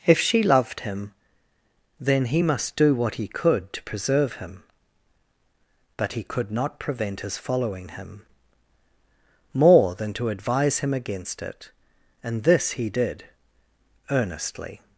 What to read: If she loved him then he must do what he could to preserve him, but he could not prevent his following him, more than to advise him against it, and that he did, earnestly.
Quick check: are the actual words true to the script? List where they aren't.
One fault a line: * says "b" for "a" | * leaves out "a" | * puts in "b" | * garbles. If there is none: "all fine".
* says "this" for "that"